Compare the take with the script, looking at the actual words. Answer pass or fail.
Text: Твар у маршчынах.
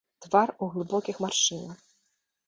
fail